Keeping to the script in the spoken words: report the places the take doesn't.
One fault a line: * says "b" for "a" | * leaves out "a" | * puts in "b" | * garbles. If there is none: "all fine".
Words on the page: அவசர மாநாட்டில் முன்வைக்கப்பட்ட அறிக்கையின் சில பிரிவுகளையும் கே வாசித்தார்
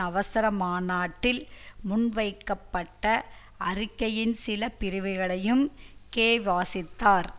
all fine